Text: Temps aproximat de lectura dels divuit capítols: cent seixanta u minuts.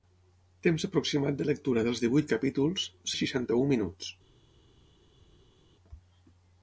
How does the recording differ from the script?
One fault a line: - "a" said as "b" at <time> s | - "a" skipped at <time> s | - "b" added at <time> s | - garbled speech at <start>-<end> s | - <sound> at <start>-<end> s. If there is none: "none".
- "cent" skipped at 2.9 s